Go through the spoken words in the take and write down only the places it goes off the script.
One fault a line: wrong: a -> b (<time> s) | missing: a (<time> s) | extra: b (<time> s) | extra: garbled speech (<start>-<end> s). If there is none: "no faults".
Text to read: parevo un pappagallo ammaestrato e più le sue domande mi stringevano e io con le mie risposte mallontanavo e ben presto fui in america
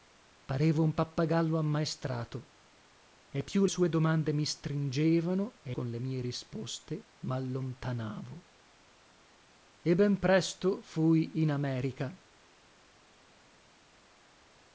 missing: le (3.6 s)
missing: io (5.8 s)